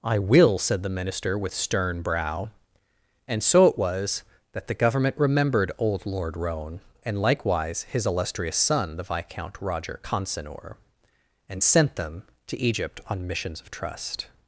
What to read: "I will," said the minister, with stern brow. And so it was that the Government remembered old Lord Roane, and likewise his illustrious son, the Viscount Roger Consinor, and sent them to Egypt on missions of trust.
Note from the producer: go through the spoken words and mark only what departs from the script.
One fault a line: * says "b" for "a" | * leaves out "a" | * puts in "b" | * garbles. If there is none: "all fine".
all fine